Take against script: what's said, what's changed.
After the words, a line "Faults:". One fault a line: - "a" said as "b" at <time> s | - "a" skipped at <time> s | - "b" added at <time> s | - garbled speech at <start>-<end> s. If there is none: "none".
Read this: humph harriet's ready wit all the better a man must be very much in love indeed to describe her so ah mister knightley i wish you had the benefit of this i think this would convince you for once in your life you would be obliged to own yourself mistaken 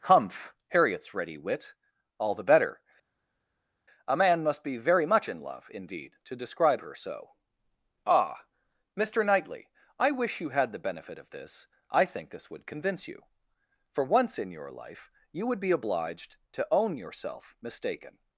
humph harriet's ready wit all the better a man must be very much in love indeed to describe her so ah mister knightley i wish you had the benefit of this i think this would convince you for once in your life you would be obliged to own yourself mistaken
Faults:
none